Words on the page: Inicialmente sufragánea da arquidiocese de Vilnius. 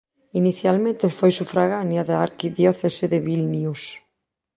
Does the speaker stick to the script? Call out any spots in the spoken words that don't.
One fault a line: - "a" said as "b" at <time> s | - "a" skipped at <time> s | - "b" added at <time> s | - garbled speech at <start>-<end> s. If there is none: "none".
- "foi" added at 1.2 s